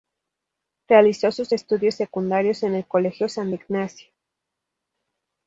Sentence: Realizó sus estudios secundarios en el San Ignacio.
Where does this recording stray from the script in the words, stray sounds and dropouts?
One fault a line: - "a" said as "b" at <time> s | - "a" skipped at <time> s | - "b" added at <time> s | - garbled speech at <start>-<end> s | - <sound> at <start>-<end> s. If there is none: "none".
- "Colegio" added at 2.9 s